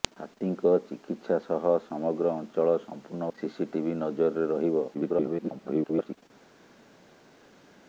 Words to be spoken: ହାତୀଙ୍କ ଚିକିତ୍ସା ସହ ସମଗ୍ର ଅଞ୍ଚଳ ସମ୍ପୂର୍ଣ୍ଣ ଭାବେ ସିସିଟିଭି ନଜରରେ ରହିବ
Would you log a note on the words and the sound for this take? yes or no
yes